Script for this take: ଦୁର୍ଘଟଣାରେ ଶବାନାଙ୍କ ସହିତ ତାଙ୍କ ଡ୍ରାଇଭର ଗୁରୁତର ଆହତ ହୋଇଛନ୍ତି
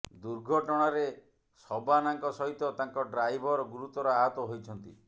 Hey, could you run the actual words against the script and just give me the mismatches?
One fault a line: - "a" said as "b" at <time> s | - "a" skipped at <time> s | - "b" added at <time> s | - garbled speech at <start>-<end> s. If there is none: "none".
none